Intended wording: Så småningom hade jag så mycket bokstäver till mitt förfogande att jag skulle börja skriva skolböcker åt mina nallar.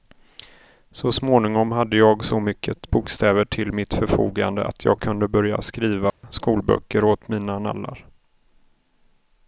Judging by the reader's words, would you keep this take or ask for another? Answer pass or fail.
fail